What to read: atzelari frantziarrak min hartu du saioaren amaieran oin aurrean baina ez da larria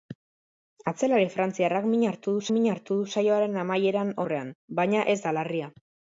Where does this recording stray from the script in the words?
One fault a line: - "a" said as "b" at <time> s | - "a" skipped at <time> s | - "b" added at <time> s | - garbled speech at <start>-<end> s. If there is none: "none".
- "min hartu du" added at 2.5 s
- "oin" skipped at 4.2 s